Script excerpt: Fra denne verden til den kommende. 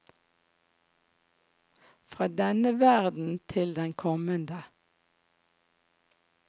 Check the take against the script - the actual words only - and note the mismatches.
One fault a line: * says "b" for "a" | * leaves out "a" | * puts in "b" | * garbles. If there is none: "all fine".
all fine